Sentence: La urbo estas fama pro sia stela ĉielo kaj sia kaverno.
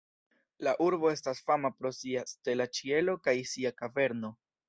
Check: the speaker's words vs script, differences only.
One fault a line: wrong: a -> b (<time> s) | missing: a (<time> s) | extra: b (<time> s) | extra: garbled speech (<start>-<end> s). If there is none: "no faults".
no faults